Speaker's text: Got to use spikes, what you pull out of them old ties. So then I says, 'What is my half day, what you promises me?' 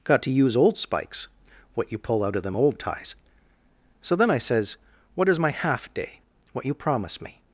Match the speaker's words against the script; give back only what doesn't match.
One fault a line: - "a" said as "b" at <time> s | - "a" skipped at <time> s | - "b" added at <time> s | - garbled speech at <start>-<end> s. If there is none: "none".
- "old" added at 0.6 s
- "promises" said as "promise" at 6.7 s